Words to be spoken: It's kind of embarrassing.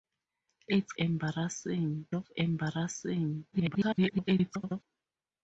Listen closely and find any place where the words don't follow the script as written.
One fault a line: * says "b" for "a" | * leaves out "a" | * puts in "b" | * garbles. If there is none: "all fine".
* says "embarrassing" for "kind"
* garbles